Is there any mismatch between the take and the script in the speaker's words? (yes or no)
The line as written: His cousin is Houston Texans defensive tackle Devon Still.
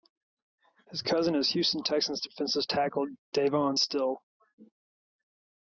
no